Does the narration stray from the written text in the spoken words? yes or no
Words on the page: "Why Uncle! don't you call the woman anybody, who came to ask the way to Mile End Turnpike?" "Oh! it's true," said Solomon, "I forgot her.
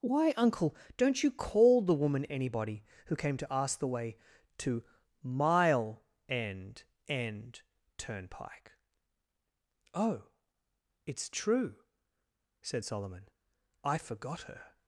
yes